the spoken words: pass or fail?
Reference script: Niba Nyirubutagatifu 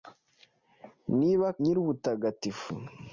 pass